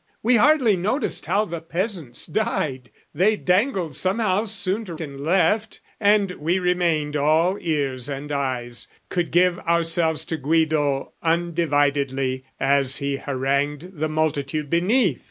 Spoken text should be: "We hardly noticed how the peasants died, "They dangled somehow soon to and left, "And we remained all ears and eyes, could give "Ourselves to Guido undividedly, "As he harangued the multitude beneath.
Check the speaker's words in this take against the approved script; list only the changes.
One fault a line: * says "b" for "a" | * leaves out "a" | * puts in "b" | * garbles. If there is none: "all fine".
all fine